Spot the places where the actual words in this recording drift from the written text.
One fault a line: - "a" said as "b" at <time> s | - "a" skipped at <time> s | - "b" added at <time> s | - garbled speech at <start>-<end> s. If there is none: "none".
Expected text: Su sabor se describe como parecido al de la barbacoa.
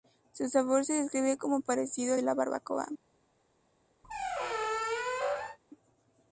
none